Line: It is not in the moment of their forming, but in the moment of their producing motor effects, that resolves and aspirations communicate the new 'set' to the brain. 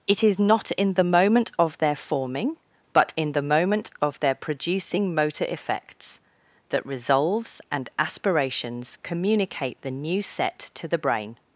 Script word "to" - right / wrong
right